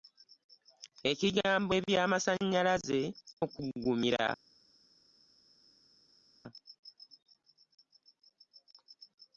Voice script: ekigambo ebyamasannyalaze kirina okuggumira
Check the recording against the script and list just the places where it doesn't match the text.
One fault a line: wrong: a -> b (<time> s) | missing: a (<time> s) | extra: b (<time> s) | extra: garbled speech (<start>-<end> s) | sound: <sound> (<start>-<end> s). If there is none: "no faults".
missing: kirina (3.0 s)